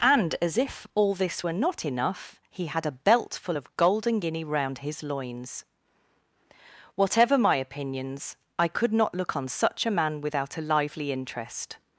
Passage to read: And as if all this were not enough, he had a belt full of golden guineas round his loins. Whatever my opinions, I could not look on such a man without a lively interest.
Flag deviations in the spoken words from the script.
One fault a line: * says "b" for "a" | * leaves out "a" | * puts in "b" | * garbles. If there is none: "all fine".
* says "guinea" for "guineas"